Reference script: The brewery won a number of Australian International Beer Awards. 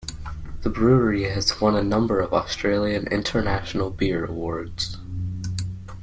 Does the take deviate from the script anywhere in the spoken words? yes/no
yes